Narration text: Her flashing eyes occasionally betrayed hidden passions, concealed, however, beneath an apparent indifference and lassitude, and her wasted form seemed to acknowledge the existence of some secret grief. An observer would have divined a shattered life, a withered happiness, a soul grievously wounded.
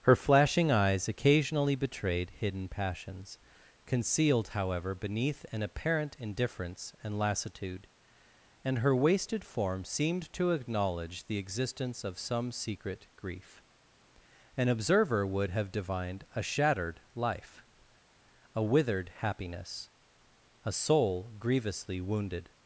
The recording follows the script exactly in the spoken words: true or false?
true